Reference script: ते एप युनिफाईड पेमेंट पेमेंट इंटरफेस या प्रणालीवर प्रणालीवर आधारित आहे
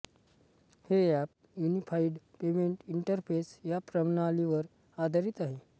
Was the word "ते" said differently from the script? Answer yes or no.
yes